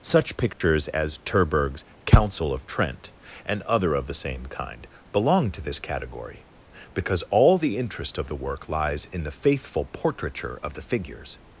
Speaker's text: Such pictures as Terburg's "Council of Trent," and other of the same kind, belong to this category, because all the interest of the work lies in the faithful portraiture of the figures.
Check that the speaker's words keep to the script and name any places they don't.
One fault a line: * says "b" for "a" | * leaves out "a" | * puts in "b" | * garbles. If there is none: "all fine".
all fine